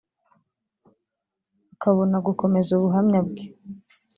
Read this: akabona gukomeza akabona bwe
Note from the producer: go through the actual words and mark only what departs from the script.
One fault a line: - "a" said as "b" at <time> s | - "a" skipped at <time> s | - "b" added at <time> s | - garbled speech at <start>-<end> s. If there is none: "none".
- "akabona" said as "ubuhamya" at 2.8 s